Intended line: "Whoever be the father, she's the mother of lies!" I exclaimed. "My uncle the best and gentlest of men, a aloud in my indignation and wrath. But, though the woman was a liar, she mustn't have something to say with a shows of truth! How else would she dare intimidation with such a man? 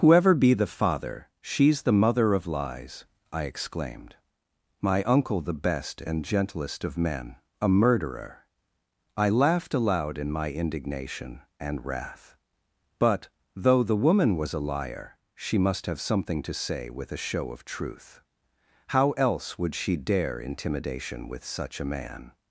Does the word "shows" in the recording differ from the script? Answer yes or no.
yes